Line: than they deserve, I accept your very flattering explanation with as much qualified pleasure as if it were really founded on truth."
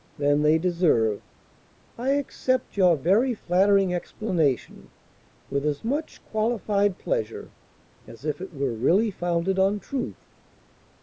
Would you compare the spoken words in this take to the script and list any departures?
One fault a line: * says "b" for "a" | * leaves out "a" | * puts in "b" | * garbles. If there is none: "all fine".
all fine